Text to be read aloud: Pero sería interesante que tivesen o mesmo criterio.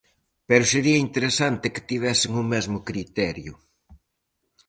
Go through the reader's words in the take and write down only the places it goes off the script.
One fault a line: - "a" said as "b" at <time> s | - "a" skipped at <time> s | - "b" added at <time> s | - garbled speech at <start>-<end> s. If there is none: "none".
none